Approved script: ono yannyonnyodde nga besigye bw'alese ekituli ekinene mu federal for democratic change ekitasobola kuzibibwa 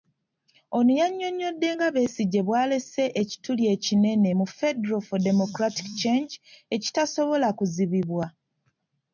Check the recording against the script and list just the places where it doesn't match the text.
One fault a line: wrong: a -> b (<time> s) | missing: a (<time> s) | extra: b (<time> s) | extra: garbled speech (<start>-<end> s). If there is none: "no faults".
no faults